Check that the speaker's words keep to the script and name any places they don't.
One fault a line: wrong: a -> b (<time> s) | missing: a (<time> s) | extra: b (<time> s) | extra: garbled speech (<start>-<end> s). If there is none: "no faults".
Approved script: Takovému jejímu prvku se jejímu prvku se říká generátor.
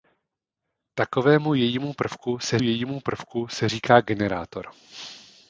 no faults